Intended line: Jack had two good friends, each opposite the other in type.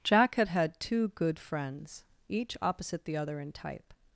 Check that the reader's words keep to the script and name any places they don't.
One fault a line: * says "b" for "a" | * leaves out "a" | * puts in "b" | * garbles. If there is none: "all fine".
* puts in "had"